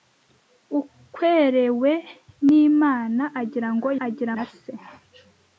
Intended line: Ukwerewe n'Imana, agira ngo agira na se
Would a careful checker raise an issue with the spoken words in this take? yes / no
no